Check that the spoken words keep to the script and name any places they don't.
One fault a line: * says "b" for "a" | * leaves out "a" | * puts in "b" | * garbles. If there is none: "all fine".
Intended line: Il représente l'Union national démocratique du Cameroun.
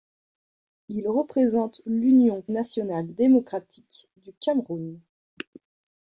all fine